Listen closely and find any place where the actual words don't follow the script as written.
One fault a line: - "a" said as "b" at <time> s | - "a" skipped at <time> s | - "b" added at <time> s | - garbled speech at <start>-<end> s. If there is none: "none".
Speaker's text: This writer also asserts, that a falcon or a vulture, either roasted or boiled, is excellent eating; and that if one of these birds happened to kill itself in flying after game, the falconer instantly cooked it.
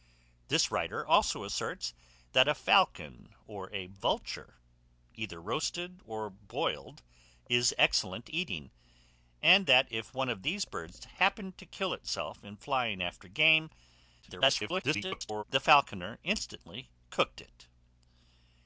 - garbled speech at 14.2-15.4 s